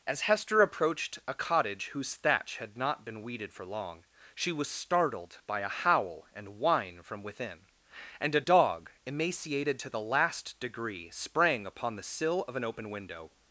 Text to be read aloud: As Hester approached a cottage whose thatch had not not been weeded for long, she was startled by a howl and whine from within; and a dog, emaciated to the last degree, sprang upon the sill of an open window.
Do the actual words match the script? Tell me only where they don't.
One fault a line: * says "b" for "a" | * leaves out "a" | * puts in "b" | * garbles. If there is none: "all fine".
* leaves out "not"